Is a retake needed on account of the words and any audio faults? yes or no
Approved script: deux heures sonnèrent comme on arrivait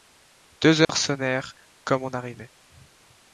yes